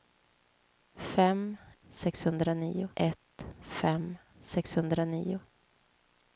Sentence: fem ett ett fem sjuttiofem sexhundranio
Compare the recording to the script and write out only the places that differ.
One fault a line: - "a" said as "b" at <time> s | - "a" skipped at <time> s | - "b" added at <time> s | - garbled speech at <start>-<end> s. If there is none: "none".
- "ett" said as "sexhundranio" at 1.9 s
- "sjuttiofem" skipped at 4.2 s